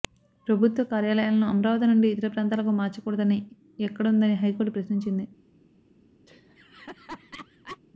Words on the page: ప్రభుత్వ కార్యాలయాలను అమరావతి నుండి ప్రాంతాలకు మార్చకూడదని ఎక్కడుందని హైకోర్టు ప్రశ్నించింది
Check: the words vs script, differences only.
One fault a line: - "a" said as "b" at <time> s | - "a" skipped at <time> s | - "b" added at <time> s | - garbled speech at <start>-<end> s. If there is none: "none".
- "ఇతర" added at 2.1 s